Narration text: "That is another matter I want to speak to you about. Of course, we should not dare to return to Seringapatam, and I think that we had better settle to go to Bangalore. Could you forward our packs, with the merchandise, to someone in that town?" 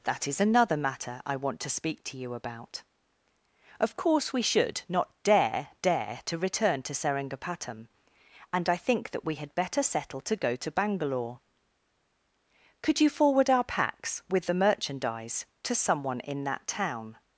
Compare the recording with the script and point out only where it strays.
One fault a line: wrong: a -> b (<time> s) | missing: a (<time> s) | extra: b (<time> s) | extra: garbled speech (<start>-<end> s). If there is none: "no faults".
extra: dare (5.8 s)